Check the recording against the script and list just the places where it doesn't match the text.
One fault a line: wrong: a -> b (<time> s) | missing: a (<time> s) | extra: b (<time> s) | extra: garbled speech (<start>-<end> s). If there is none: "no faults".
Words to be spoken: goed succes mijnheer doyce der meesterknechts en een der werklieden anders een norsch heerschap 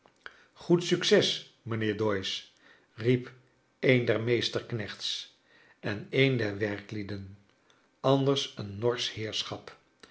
extra: riep een (2.9 s)